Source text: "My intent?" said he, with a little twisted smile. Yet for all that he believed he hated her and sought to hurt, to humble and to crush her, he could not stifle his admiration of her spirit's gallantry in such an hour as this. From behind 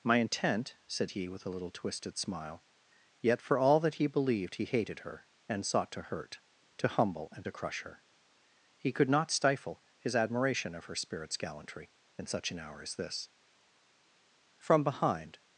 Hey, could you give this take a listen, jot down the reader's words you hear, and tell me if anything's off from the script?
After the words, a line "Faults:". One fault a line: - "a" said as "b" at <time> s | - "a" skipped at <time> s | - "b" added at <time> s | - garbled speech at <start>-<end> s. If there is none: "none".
"My intent?" said he, with a little twisted smile. Yet for all that he believed he hated her and sought to hurt, to humble and to crush her, he could not stifle his admiration of her spirit's gallantry in such an hour as this. From behind
Faults:
none